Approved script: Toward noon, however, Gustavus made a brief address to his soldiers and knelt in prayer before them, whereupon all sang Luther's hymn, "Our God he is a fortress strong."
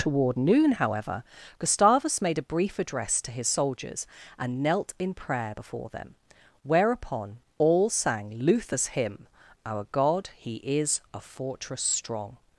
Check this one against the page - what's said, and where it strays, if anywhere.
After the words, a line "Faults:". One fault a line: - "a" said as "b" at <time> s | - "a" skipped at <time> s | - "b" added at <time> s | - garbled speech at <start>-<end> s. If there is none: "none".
Toward noon, however, Gustavus made a brief address to his soldiers and knelt in prayer before them, whereupon all sang Luther's hymn, "Our God he is a fortress strong."
Faults:
none